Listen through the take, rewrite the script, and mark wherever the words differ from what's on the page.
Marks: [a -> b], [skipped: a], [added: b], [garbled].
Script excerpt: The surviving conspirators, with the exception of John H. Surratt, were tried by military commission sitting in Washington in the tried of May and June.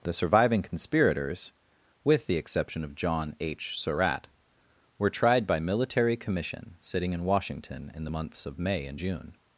The surviving conspirators, with the exception of John H. Surratt, were tried by military commission sitting in Washington in the [tried -> months] of May and June.